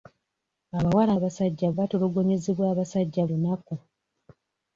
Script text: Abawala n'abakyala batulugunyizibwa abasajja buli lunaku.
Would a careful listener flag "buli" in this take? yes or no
yes